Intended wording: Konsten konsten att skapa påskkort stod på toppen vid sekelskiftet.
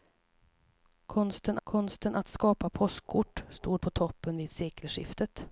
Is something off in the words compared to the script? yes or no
no